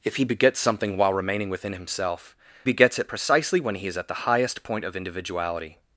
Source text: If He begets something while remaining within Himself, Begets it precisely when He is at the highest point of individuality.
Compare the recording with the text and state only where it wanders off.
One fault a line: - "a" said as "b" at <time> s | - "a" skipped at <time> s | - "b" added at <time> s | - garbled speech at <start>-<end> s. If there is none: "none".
none